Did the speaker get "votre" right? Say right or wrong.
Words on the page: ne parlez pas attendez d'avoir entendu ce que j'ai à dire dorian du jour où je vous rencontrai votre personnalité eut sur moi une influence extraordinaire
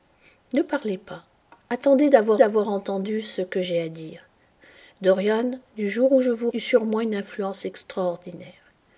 wrong